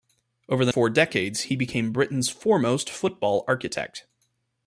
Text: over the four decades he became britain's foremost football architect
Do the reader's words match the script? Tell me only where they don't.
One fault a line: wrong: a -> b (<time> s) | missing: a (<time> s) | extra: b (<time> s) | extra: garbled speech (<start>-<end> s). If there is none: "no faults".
no faults